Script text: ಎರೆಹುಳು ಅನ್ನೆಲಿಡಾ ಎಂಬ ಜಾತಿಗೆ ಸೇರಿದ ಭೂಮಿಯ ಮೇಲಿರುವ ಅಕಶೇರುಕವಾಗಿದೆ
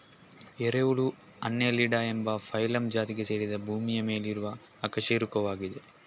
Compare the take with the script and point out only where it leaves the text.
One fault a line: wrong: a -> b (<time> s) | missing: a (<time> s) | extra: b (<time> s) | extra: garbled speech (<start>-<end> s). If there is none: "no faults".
extra: ಫೈಲಮ್ (2.4 s)